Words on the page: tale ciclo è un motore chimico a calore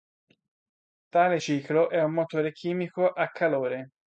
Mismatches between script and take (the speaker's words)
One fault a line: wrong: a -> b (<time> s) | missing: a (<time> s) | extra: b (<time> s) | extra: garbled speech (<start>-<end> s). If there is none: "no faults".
no faults